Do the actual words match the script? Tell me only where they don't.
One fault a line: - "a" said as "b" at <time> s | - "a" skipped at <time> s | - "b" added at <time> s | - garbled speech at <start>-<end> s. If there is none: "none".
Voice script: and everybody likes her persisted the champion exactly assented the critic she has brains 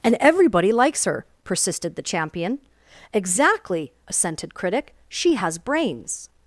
- "the" skipped at 4.5 s